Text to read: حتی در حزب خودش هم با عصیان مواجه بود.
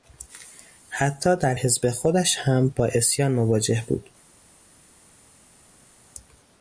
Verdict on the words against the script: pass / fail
pass